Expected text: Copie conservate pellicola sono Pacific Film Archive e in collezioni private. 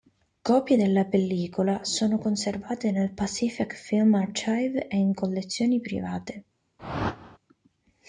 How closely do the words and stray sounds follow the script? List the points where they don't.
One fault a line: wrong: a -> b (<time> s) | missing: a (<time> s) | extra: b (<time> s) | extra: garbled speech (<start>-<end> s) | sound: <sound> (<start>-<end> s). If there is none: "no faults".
wrong: conservate -> della (0.8 s)
extra: conservate nel (2.2 s)
sound: whoosh (6.8-7.4 s)